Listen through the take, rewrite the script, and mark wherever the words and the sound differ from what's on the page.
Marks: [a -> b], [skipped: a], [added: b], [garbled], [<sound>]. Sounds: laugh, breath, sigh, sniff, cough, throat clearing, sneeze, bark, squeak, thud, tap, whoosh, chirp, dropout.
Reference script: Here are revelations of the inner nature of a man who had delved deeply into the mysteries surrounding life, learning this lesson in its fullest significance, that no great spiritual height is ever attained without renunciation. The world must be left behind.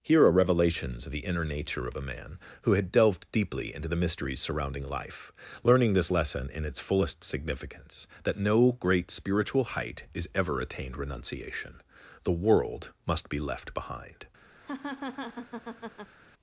Here are revelations of the inner nature of a man who had delved deeply into the mysteries surrounding life, learning this lesson in its fullest significance, that no great spiritual height is ever attained [skipped: without] renunciation. The world must be left behind. [laugh]